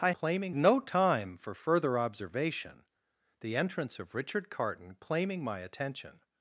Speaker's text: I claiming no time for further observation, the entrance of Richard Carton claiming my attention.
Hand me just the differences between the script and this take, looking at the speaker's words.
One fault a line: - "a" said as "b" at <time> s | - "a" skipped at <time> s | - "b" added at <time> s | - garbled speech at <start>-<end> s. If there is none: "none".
none